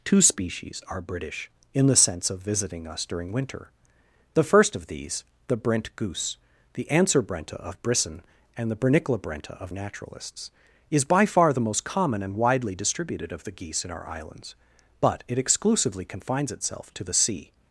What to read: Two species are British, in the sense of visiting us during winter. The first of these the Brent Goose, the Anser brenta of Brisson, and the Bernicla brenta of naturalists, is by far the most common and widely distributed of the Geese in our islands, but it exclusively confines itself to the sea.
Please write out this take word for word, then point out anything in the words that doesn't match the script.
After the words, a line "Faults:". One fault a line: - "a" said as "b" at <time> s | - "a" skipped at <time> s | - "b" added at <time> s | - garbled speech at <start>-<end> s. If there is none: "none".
Two species are British, in the sense of visiting us during winter. The first of these the Brent Goose, the Anser brenta of Brisson, and the Bernicla brenta of naturalists, is by far the most common and widely distributed of the Geese in our islands, but it exclusively confines itself to the sea.
Faults:
none